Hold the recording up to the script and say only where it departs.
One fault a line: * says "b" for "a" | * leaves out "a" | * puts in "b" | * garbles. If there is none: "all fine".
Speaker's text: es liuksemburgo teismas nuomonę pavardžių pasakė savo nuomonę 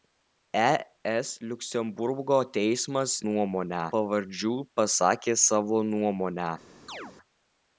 all fine